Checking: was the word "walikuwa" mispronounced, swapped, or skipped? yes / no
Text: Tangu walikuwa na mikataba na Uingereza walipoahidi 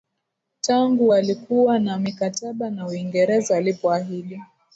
no